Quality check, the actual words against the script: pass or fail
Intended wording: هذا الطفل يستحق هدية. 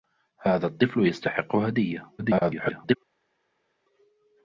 fail